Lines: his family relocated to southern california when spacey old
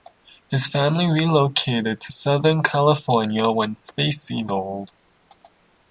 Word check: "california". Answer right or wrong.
right